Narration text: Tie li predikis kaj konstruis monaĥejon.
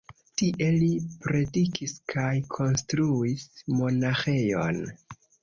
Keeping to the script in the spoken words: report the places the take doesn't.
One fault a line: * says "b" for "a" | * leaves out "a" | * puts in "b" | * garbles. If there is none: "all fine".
all fine